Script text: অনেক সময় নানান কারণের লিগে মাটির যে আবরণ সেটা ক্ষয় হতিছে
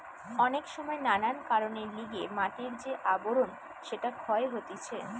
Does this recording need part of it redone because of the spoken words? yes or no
no